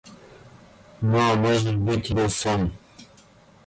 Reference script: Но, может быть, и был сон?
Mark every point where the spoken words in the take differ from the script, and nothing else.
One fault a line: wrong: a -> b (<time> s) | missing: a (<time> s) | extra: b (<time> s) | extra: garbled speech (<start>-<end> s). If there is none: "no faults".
no faults